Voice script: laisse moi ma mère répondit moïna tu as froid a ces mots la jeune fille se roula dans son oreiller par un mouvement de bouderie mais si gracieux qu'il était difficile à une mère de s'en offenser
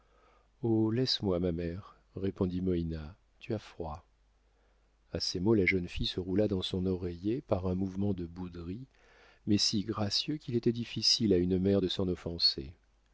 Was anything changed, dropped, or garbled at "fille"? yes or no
no